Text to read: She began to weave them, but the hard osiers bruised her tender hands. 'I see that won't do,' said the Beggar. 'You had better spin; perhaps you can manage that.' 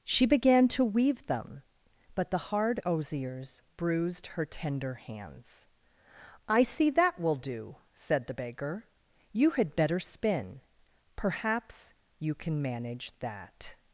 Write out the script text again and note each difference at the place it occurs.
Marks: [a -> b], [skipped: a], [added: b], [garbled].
She began to weave them, but the hard osiers bruised her tender hands. 'I see that [won't -> will] do,' said the Beggar. 'You had better spin; perhaps you can manage that.'